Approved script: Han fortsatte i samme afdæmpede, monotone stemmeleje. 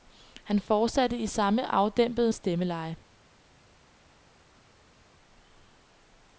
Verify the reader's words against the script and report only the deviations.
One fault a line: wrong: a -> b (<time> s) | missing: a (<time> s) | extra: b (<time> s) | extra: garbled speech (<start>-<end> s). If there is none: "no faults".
missing: monotone (2.3 s)